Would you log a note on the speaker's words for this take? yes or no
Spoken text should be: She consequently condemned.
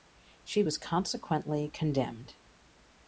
yes